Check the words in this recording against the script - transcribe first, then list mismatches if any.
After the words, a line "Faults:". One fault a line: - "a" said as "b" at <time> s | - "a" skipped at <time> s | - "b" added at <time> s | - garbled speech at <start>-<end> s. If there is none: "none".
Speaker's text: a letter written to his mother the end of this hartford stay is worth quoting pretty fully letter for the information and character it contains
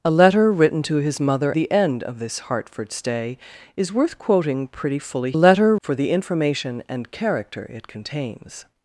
a letter written to his mother the end of this hartford stay is worth quoting pretty fully letter for the information and character it contains
Faults:
none